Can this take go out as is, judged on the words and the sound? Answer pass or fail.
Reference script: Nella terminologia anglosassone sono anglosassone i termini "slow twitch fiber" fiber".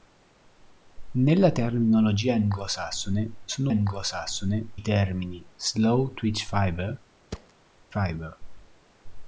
fail